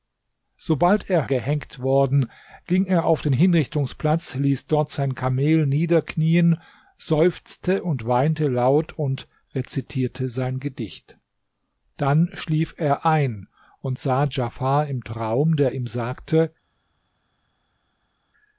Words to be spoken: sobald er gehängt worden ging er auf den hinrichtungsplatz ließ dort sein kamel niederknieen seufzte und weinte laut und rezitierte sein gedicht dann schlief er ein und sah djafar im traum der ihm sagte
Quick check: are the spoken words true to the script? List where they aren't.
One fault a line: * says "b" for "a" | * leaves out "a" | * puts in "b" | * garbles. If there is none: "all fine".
all fine